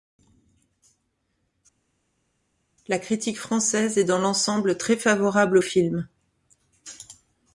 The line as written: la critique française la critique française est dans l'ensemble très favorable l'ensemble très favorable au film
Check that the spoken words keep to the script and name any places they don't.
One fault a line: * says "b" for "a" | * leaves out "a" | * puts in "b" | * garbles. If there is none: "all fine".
* leaves out "la critique française"
* leaves out "l'ensemble très favorable"